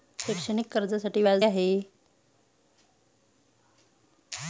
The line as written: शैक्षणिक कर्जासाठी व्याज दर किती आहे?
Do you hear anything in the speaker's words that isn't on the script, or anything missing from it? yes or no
yes